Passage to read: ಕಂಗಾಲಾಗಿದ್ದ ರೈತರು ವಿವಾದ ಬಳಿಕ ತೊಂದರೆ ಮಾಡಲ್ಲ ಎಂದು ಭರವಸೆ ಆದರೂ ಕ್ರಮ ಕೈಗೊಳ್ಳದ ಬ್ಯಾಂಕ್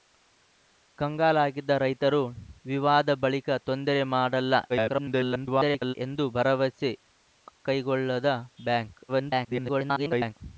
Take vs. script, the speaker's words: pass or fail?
fail